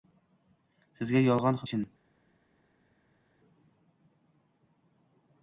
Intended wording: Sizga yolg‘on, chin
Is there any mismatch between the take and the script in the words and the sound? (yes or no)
no